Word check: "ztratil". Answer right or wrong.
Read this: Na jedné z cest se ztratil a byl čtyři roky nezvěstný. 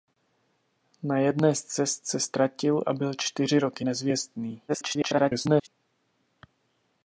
right